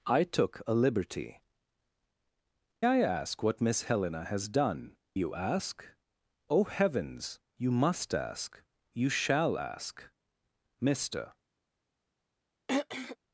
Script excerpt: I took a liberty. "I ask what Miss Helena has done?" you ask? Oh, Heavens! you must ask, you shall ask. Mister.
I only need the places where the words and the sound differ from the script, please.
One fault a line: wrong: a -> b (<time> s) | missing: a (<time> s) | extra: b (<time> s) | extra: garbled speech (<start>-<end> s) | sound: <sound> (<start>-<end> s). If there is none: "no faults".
sound: throat clearing (12.7-13.2 s)